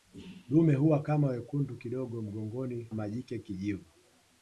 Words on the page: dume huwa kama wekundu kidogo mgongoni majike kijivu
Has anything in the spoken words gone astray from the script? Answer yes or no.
no